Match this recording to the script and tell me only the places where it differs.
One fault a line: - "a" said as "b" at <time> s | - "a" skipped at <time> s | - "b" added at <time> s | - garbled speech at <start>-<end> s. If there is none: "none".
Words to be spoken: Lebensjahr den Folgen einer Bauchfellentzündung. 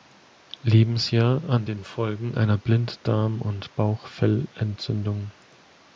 - "an" added at 1.5 s
- "Blinddarm und" added at 2.6 s